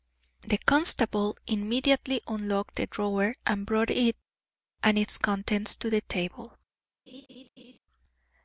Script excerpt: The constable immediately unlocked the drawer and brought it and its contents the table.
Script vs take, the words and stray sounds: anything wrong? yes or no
yes